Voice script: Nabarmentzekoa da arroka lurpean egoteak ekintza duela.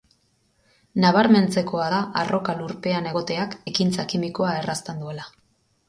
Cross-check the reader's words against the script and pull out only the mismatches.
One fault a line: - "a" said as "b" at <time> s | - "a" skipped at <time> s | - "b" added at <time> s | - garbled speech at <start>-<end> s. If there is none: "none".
- "kimikoa errazten" added at 4.2 s